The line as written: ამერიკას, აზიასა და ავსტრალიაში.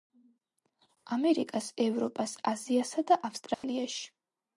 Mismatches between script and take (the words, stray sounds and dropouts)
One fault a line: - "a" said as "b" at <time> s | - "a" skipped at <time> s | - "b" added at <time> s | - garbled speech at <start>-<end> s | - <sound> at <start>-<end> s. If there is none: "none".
- "ევროპას" added at 1.9 s
- dropout at 3.5-3.6 s